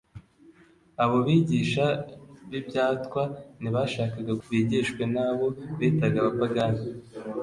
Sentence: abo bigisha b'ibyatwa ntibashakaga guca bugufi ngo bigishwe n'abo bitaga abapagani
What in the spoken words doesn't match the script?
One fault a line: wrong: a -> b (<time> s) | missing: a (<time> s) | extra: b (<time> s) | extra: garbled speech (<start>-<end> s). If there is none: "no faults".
missing: guca bugufi ngo (4.3 s)